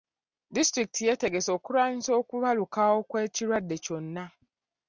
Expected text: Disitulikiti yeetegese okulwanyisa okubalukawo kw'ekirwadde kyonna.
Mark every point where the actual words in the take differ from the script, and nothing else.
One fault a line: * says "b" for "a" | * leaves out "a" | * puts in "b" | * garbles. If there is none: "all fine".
all fine